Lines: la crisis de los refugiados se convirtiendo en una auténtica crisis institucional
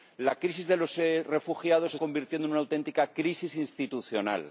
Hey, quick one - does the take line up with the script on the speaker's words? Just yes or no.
yes